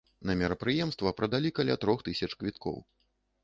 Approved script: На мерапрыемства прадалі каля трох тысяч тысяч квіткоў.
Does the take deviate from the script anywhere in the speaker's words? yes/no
yes